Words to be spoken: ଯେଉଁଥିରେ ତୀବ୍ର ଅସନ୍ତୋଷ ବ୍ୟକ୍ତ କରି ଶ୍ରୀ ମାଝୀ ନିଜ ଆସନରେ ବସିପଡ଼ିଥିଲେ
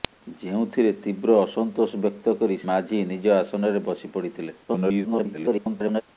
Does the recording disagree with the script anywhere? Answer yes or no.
yes